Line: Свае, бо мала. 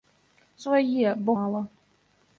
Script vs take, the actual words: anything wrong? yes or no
no